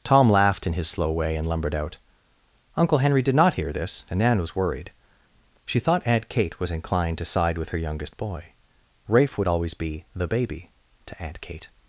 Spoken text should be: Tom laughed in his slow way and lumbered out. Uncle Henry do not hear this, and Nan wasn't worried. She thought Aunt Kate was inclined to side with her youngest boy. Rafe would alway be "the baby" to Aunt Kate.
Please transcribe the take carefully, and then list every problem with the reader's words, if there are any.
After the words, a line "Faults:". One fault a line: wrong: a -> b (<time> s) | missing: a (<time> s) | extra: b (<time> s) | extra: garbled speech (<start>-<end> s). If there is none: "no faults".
Tom laughed in his slow way and lumbered out. Uncle Henry did not hear this, and Nan was worried. She thought Aunt Kate was inclined to side with her youngest boy. Rafe would always be "the baby" to Aunt Kate.
Faults:
wrong: do -> did (3.2 s)
wrong: wasn't -> was (4.4 s)
wrong: alway -> always (9.5 s)